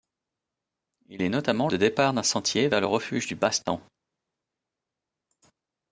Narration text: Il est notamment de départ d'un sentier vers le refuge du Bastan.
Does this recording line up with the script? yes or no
yes